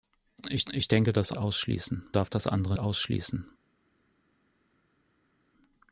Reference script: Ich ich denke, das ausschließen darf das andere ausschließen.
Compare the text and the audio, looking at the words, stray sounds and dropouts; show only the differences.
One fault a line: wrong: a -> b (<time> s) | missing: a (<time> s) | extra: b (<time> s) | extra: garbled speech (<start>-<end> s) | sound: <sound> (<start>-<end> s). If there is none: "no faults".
no faults